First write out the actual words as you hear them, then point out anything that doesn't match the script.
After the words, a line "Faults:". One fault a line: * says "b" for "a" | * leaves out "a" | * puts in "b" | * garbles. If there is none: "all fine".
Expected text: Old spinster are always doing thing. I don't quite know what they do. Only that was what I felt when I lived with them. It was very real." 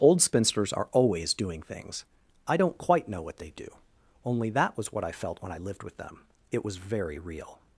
Old spinsters are always doing things. I don't quite know what they do. Only that was what I felt when I lived with them. It was very real."
Faults:
* says "spinsters" for "spinster"
* says "things" for "thing"